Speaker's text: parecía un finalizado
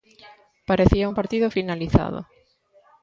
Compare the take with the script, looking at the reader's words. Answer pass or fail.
fail